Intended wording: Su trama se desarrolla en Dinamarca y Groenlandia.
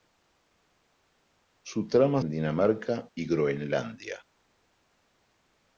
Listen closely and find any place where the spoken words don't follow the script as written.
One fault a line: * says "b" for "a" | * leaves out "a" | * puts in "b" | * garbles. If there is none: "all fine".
* leaves out "se desarrolla"